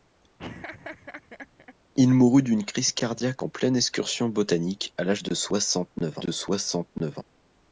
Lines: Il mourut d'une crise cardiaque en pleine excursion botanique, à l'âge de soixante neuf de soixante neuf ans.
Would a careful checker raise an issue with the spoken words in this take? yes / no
no